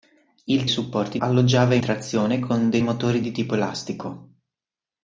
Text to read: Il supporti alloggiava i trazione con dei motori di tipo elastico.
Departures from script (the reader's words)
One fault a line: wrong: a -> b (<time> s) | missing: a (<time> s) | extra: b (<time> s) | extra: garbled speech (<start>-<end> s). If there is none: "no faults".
no faults